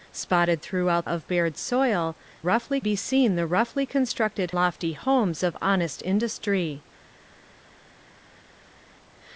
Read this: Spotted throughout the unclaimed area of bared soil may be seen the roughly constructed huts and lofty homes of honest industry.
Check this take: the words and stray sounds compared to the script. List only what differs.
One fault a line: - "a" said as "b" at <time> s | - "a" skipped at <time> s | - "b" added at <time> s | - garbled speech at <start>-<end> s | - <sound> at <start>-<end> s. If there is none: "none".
- "the unclaimed area" skipped at 1.1 s
- "may" said as "roughly" at 2.4 s
- "huts and" skipped at 4.5 s